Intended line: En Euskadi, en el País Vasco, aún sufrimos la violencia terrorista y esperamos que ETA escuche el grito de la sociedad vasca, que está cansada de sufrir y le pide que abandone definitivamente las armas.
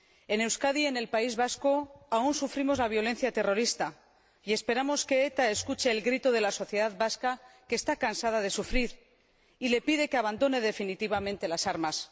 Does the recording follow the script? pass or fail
pass